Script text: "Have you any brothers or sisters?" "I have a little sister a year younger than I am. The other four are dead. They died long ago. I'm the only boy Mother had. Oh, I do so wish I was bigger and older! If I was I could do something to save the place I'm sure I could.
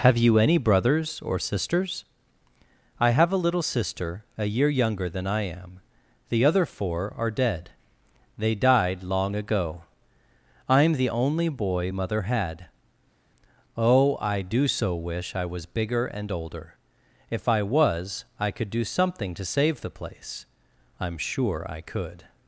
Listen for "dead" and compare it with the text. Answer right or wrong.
right